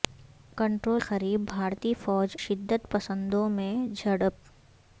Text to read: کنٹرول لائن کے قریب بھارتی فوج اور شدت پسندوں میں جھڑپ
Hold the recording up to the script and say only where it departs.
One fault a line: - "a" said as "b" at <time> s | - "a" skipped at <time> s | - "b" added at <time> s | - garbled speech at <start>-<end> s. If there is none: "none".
- "لائن کے" skipped at 1.0 s
- "اور" skipped at 2.4 s